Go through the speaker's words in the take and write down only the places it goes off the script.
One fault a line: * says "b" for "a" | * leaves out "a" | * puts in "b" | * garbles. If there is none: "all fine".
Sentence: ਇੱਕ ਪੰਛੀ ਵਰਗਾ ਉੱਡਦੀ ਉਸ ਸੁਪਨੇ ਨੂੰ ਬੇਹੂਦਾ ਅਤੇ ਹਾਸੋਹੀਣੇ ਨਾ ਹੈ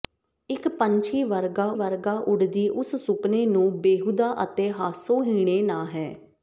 * puts in "ਵਰਗਾ"